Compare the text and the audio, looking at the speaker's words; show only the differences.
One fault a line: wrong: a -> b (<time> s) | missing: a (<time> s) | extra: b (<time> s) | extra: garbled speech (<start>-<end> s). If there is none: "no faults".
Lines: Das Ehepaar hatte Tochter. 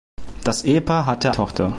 no faults